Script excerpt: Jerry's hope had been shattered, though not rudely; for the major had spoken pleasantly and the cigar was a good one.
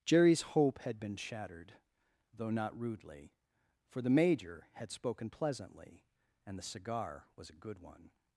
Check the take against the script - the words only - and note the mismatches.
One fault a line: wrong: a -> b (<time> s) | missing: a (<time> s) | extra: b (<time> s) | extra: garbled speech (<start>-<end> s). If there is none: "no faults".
no faults